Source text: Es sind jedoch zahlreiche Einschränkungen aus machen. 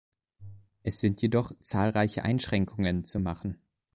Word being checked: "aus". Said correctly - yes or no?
no